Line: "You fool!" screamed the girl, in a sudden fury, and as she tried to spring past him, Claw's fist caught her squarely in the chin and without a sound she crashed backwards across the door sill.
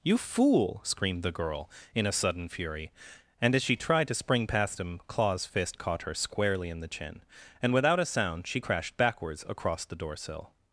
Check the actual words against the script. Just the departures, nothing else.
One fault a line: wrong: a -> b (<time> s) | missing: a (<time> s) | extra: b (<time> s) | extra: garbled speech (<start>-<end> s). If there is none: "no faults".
no faults